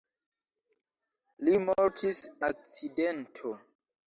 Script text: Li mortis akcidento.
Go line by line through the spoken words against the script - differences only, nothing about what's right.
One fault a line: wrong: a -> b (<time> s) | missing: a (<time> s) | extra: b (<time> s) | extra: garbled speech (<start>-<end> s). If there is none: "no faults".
no faults